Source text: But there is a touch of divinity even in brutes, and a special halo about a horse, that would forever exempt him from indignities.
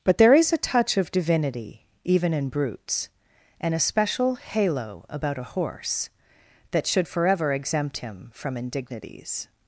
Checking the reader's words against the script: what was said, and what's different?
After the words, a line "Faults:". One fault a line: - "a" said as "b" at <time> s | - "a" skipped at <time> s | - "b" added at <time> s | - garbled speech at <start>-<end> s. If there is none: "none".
But there is a touch of divinity even in brutes, and a special halo about a horse, that should forever exempt him from indignities.
Faults:
- "would" said as "should" at 6.9 s